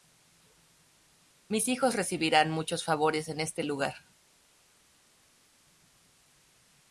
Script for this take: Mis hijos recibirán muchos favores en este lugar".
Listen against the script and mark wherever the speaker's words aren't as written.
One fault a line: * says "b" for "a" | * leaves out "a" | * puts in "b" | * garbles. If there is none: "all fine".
all fine